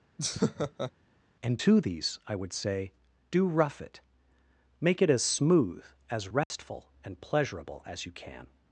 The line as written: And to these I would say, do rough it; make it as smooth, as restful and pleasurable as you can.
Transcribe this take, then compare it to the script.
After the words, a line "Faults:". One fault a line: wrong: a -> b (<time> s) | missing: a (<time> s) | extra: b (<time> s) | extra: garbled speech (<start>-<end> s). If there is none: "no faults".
And to these I would say, do rough it; make it as smooth, as restful and pleasurable as you can.
Faults:
no faults